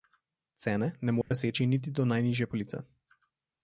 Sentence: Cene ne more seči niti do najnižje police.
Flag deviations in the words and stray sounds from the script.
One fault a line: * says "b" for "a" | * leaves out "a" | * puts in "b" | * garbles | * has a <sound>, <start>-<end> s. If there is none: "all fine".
* has a dropout, 1.2-1.3 s